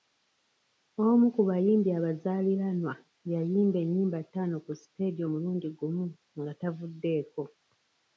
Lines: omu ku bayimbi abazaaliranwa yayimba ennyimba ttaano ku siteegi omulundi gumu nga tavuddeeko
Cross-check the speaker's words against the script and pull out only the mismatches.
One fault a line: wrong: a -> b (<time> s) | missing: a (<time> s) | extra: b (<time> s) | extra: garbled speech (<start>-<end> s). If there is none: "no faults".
no faults